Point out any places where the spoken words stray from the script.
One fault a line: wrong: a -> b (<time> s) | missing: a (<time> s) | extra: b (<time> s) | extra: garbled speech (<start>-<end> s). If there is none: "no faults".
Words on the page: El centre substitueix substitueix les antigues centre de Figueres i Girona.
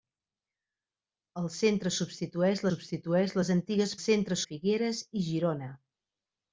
no faults